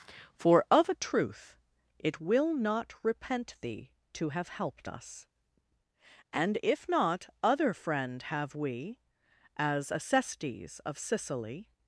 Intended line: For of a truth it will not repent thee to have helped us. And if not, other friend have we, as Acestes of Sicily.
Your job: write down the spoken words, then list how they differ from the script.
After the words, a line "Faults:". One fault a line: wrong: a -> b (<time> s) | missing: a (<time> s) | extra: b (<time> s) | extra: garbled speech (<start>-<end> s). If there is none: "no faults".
For of a truth it will not repent thee to have helped us. And if not, other friend have we, as Acestes of Sicily.
Faults:
no faults